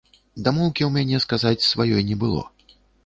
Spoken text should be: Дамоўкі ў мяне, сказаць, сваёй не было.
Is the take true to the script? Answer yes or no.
yes